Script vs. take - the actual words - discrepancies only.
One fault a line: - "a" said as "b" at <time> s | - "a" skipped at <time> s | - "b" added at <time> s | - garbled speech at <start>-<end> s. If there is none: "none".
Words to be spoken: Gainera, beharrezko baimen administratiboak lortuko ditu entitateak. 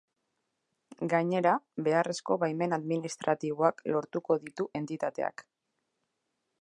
none